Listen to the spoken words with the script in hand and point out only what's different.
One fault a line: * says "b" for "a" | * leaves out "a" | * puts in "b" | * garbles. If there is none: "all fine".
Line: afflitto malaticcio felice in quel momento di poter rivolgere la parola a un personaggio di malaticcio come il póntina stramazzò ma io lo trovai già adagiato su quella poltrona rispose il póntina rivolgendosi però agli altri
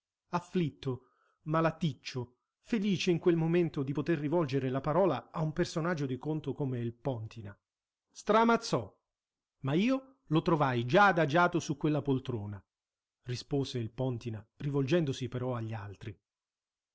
* says "conto" for "malaticcio"